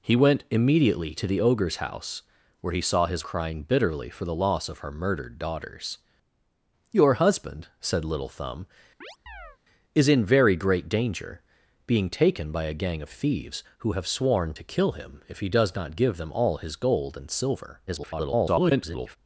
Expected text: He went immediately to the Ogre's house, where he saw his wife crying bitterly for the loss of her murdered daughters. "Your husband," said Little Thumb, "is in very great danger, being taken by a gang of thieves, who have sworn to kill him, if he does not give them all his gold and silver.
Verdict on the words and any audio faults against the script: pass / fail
fail